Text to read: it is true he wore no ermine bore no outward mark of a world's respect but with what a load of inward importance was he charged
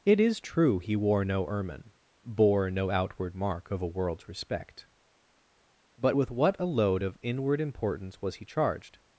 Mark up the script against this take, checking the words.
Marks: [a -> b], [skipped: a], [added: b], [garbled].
it is true he wore no ermine bore no outward mark of a world's respect but with what a load of inward importance was he charged